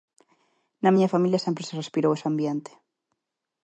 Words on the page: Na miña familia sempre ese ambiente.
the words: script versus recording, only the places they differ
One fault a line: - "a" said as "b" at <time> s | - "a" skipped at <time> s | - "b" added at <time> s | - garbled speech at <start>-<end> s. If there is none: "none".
- "se respirou" added at 1.7 s